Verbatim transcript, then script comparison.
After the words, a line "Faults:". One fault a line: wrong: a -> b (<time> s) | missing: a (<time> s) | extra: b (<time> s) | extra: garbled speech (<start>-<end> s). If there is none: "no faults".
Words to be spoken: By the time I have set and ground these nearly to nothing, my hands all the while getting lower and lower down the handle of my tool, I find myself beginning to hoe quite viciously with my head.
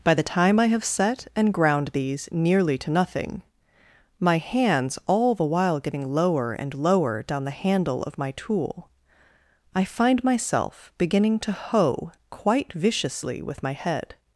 By the time I have set and ground these nearly to nothing, my hands all the while getting lower and lower down the handle of my tool, I find myself beginning to hoe quite viciously with my head.
Faults:
no faults